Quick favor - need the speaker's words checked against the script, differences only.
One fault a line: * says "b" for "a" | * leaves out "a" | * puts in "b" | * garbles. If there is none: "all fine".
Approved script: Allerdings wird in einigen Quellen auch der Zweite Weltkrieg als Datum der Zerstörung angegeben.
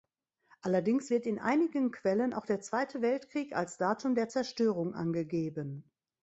all fine